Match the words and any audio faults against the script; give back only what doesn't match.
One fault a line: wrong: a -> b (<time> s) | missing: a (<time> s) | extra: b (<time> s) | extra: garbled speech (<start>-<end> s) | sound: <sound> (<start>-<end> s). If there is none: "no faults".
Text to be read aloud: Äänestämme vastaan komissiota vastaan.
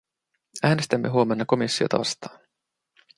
wrong: vastaan -> huomenna (1.1 s)